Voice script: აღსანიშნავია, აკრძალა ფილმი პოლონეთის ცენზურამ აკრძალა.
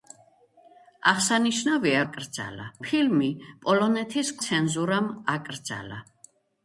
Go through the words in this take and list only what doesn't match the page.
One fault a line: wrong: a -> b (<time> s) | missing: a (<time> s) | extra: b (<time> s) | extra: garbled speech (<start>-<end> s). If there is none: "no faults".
no faults